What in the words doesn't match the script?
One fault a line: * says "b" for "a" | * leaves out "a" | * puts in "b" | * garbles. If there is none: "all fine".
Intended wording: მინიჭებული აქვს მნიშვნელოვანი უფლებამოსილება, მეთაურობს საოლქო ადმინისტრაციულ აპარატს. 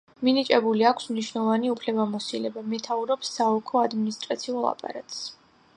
all fine